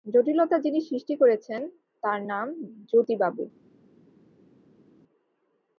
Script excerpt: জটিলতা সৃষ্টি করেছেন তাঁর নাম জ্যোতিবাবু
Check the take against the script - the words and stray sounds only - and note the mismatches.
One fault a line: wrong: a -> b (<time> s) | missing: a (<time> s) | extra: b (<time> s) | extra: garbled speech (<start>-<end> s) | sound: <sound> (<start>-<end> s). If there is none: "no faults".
extra: যিনি (0.6 s)